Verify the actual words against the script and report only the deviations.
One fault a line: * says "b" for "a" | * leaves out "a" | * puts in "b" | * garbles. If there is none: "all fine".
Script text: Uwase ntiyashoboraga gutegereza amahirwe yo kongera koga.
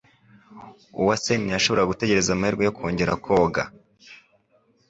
all fine